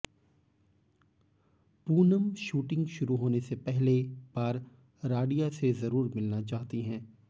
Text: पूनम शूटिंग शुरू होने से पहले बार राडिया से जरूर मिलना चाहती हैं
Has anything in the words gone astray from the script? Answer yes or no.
no